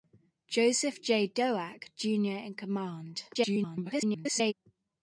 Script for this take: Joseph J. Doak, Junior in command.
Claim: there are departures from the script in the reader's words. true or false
true